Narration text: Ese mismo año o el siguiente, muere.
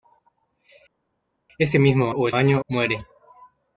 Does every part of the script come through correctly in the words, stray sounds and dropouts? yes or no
no